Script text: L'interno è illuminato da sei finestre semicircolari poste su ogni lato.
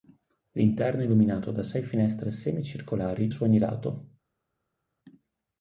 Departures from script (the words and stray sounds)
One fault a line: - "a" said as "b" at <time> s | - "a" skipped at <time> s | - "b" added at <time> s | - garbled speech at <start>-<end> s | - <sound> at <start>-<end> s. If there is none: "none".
- "poste" skipped at 3.3 s